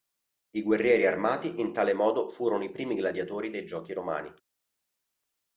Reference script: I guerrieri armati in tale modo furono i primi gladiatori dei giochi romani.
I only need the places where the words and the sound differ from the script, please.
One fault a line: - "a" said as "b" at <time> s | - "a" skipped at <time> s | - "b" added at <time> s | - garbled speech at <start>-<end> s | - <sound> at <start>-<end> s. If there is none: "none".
none